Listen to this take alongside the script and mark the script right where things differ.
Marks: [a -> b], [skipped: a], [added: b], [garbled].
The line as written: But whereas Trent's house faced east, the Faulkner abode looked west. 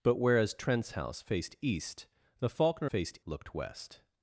But whereas Trent's house faced east, the Faulkner [abode -> faced] looked west.